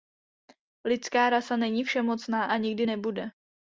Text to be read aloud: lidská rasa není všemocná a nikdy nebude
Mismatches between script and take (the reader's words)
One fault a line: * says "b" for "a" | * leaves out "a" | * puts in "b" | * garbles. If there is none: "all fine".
all fine